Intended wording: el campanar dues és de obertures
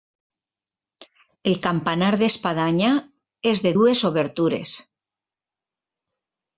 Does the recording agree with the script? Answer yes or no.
no